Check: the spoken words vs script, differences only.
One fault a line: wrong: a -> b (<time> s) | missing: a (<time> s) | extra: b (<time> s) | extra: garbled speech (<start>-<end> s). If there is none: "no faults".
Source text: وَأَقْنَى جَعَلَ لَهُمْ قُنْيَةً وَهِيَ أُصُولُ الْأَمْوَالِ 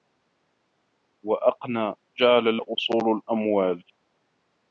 missing: لَهُمْ قُنْيَةً وَهِيَ (2.6 s)